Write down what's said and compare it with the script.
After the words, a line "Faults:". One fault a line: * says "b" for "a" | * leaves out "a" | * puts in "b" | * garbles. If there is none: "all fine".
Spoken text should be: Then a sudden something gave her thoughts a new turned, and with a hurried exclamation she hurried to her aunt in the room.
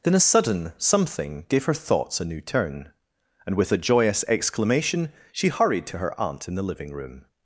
Then a sudden something gave her thoughts a new turn, and with a joyous exclamation she hurried to her aunt in the living room.
Faults:
* says "turn" for "turned"
* says "joyous" for "hurried"
* puts in "living"